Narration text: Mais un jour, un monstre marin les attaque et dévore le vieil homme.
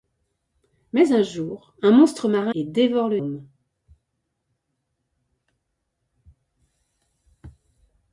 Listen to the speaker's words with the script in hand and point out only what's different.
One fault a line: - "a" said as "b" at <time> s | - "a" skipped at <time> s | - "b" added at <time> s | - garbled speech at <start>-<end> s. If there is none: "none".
- "les attaque" skipped at 2.5 s
- "vieil" skipped at 3.2 s